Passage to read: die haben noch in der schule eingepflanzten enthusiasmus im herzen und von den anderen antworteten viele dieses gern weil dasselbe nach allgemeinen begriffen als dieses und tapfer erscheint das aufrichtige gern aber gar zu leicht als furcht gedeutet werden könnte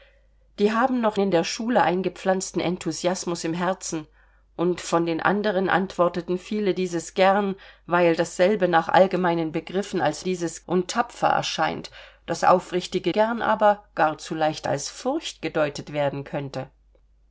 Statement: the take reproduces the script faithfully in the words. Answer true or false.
true